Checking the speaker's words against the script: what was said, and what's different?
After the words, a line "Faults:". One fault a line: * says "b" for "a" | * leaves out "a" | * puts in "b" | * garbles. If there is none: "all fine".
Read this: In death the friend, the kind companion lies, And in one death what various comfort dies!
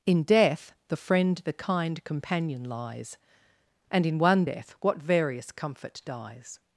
In death the friend, the kind companion lies, And in one death what various comfort dies!
Faults:
all fine